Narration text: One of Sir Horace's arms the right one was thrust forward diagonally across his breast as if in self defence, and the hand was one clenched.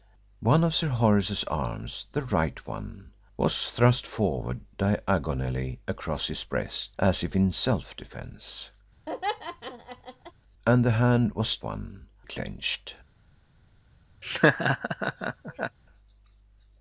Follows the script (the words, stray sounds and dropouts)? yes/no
no